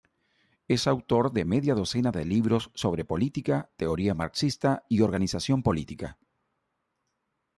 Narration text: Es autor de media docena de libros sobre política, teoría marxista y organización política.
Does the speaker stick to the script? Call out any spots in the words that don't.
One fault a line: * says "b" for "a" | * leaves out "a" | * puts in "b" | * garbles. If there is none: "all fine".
all fine